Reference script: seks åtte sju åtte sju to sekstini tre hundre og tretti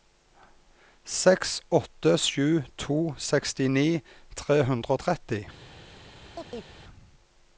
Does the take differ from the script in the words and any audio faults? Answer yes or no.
yes